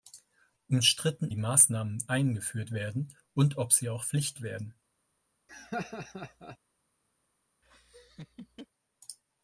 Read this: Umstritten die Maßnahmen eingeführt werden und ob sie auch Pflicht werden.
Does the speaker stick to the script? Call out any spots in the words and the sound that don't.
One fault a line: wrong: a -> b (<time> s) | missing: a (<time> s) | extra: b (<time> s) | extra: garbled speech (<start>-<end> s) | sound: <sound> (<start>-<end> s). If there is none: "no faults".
sound: laugh (5.5-6.6 s)
sound: laugh (7.6-8.7 s)